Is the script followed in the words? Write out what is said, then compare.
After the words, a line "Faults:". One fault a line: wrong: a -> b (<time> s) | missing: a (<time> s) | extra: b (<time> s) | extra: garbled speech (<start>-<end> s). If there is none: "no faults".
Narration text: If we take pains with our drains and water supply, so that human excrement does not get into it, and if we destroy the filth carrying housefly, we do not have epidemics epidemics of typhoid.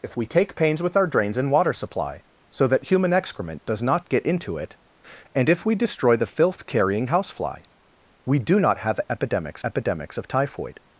If we take pains with our drains and water supply, so that human excrement does not get into it, and if we destroy the filth carrying housefly, we do not have epidemics epidemics of typhoid.
Faults:
no faults